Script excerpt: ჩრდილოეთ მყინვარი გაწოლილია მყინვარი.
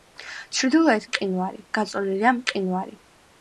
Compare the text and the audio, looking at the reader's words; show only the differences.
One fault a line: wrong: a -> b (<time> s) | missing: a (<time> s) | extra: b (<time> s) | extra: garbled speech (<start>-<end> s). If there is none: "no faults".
no faults